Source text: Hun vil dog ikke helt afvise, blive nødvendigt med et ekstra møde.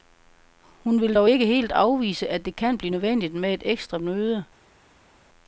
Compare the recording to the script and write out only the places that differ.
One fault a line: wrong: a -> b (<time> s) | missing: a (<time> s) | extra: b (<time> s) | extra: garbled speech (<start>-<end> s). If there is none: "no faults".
extra: at det kan (2.3 s)